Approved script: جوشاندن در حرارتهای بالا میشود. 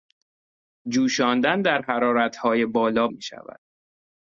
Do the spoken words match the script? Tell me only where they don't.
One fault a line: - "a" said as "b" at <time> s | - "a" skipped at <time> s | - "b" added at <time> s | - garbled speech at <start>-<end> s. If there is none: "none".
none